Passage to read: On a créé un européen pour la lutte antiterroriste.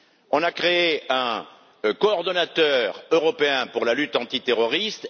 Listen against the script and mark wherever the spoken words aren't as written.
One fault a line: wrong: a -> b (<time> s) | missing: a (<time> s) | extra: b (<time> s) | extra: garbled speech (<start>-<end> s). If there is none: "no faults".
extra: coordonnateur (2.0 s)